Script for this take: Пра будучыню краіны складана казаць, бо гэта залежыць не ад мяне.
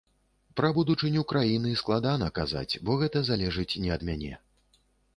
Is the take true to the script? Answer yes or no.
yes